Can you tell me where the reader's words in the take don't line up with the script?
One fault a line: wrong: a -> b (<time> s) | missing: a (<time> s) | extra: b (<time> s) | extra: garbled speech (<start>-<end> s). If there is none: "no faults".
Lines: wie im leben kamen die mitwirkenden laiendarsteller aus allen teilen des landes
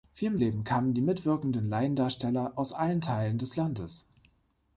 no faults